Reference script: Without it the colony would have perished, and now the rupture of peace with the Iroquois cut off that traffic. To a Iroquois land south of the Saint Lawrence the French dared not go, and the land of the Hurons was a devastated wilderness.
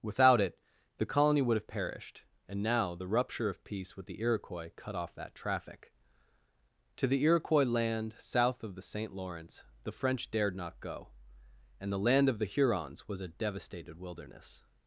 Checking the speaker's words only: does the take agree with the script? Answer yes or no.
no